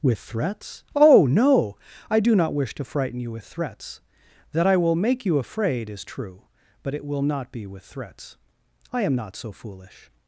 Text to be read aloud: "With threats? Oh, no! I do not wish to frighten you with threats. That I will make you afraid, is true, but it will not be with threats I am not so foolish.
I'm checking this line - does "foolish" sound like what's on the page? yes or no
yes